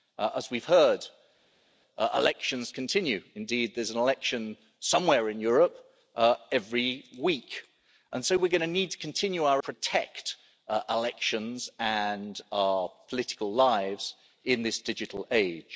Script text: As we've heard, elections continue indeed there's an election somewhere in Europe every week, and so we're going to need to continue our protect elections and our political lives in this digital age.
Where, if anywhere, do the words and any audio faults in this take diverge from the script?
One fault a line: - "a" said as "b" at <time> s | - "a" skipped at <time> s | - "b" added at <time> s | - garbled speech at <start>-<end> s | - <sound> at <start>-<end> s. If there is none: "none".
none